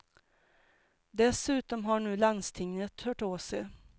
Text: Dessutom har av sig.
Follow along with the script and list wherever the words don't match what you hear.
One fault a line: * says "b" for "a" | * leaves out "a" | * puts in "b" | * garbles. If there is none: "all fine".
* puts in "nu landstinget hört"